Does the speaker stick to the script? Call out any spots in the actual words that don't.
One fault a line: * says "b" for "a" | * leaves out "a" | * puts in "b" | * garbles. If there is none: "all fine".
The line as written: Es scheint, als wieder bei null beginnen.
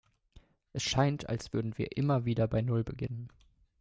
* puts in "würden wir immer"